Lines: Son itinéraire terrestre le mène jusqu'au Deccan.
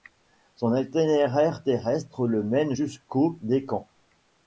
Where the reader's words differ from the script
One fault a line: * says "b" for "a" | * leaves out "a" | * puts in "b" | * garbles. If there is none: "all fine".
all fine